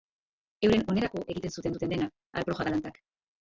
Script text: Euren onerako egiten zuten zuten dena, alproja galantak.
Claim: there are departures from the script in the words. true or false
false